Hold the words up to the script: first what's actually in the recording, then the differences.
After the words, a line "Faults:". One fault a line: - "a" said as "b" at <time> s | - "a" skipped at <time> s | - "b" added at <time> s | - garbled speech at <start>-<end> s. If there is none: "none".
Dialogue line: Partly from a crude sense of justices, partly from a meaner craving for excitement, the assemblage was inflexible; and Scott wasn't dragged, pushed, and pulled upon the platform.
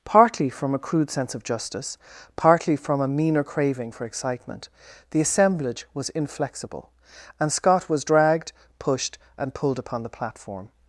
Partly from a crude sense of justice, partly from a meaner craving for excitement, the assemblage was inflexible; and Scott was dragged, pushed, and pulled upon the platform.
Faults:
- "justices" said as "justice" at 1.4 s
- "wasn't" said as "was" at 7.9 s